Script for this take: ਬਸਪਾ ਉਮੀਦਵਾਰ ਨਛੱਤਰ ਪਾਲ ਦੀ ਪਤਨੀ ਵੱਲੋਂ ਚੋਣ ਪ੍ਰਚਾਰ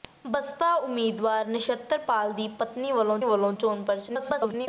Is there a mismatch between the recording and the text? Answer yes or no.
yes